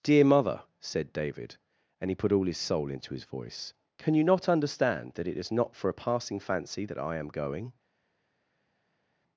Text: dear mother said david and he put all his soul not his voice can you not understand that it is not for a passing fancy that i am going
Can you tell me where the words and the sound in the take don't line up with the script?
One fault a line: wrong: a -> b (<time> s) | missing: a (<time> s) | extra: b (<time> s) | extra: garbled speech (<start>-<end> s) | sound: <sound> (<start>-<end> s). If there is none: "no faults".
wrong: not -> into (2.9 s)